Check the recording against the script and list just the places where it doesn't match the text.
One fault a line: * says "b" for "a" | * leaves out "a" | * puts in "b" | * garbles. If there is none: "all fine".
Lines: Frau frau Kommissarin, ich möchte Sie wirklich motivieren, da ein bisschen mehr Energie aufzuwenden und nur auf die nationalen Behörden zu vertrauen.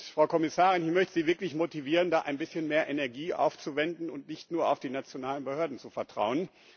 * leaves out "frau"
* puts in "nicht"